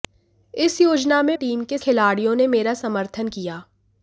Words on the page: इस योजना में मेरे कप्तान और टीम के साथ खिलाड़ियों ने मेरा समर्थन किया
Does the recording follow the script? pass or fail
fail